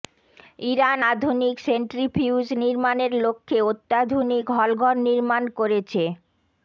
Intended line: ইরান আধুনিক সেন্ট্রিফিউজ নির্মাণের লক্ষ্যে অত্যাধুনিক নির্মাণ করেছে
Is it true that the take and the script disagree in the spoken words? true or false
true